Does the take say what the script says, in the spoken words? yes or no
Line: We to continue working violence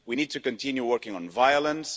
no